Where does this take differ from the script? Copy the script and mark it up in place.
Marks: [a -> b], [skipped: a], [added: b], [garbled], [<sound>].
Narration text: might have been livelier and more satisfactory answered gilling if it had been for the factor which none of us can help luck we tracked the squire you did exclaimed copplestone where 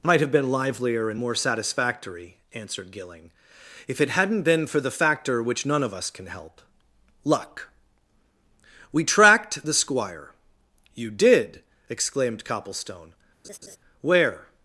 might have been livelier and more satisfactory answered gilling if it [had -> hadn't] been for the factor which none of us can help luck we tracked the squire you did exclaimed copplestone [laugh] where